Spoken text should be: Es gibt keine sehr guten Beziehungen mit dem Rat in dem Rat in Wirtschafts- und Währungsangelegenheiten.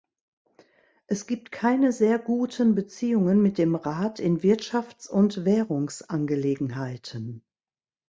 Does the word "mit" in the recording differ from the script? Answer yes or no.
no